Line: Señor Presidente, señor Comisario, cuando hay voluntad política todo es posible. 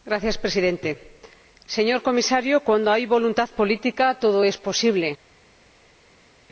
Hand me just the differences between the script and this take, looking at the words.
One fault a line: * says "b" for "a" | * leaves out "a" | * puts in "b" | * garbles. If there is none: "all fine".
all fine